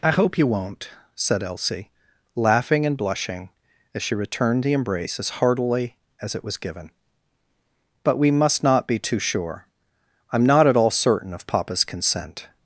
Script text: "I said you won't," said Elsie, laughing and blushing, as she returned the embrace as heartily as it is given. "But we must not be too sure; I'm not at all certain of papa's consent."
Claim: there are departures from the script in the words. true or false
true